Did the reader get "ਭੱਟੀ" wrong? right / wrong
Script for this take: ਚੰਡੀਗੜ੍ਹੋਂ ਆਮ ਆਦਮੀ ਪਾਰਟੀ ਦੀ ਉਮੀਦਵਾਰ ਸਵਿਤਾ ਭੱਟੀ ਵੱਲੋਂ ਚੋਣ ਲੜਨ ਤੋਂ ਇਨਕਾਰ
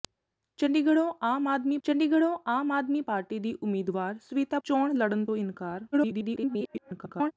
wrong